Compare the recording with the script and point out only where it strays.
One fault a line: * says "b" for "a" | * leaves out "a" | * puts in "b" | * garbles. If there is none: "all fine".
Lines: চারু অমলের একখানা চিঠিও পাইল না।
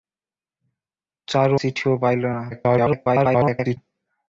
* leaves out "অমলের একখানা"
* garbles